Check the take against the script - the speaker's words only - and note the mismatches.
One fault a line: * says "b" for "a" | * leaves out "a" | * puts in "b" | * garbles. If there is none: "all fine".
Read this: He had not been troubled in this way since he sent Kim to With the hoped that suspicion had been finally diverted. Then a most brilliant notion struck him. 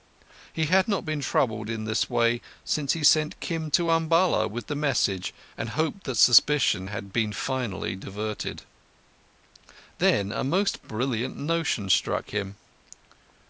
* puts in "Umballa"
* puts in "message and"